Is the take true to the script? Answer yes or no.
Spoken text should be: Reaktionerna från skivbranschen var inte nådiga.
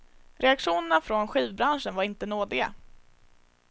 yes